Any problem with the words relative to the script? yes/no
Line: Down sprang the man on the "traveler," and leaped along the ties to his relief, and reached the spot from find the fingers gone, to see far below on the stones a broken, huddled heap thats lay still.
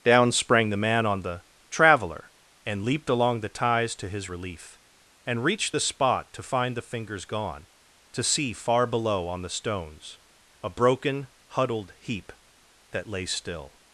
yes